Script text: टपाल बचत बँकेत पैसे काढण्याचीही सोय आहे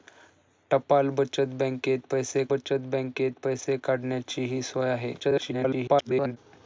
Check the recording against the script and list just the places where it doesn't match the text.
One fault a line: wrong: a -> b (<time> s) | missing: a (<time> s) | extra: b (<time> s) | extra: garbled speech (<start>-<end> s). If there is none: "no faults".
extra: बचत बँकेत पैसे (2.5 s)
extra: garbled speech (5.2-6.4 s)